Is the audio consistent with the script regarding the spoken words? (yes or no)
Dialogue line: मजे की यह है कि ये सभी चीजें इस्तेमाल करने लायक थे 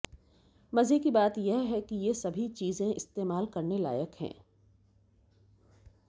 no